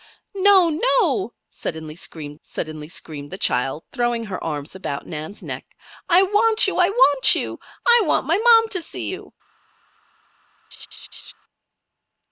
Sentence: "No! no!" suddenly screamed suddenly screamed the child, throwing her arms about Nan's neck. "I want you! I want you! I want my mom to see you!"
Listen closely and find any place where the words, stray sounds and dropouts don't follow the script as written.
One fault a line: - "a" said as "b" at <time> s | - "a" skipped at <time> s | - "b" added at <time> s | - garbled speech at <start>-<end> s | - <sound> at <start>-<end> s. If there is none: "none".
- laugh at 10.7-11.3 s